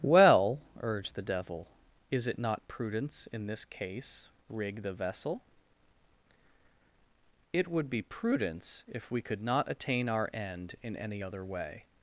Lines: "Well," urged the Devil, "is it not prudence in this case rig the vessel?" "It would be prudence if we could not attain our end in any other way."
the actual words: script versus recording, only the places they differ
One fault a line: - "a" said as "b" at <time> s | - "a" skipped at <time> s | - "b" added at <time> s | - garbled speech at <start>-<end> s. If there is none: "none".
none